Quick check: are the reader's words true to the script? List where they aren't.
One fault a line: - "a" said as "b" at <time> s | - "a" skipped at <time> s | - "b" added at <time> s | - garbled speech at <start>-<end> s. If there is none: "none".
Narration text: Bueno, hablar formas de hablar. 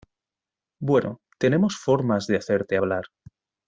- "hablar" said as "tenemos" at 1.4 s
- "hacerte" added at 2.4 s